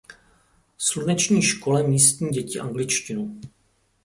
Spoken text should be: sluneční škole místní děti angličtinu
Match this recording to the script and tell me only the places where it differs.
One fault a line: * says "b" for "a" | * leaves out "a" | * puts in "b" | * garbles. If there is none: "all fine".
all fine